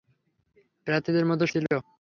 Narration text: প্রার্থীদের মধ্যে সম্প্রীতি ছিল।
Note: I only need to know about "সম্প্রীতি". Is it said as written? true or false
false